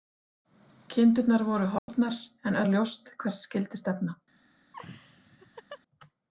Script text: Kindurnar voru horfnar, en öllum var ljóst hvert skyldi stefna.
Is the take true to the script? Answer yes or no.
no